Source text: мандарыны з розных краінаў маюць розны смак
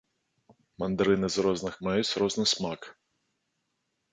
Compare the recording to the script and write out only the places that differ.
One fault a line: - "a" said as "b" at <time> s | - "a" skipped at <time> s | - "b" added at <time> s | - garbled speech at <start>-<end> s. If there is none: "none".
- "краінаў" skipped at 1.8 s